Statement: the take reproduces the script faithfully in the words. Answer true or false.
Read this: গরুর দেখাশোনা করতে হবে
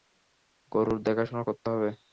true